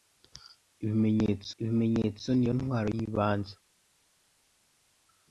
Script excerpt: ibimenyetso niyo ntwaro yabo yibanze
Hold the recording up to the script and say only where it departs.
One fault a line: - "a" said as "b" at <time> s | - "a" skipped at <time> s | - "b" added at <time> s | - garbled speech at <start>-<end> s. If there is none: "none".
- "ibimenyetso" added at 1.6 s
- "yabo" skipped at 2.9 s